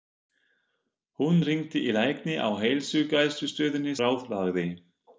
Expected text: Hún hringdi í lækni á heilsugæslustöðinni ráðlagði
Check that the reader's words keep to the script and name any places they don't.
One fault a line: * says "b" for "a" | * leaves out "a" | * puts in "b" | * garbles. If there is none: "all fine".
all fine